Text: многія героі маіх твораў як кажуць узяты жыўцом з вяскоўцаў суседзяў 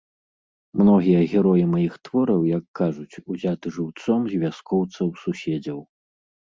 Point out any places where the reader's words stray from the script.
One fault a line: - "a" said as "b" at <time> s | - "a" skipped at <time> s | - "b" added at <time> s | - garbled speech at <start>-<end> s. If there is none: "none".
none